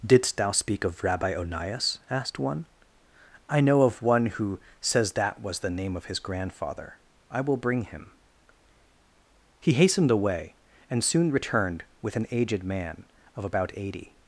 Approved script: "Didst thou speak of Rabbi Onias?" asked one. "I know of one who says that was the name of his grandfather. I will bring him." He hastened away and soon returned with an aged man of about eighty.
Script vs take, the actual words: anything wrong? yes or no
no